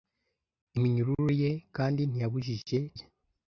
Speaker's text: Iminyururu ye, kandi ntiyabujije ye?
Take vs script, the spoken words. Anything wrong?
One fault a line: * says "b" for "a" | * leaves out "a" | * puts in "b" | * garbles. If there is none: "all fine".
all fine